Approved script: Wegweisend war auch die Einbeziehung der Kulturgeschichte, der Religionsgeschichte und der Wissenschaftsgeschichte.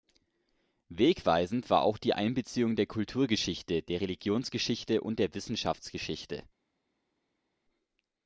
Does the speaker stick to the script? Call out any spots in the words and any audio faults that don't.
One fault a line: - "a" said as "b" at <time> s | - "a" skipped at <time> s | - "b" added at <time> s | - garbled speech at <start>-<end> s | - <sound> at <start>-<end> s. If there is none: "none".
none